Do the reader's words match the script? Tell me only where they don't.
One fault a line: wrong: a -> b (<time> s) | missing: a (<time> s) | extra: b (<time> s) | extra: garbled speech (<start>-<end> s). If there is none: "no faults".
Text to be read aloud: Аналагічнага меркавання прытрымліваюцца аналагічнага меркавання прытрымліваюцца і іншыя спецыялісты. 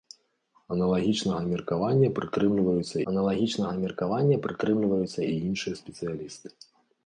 no faults